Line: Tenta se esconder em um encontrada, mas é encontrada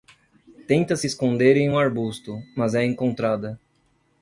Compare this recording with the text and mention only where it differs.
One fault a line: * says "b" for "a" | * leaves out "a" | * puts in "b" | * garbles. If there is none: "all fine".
* says "arbusto" for "encontrada"